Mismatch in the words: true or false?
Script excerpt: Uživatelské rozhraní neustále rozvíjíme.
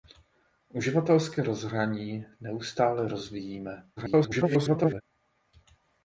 true